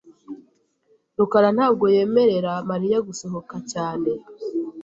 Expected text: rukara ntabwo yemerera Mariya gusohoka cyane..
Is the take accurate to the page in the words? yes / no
yes